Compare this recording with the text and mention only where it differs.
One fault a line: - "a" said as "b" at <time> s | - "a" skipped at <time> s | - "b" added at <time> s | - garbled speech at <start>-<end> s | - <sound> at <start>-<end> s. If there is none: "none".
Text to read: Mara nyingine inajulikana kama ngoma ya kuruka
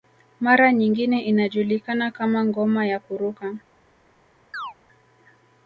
- chirp at 4.5-4.7 s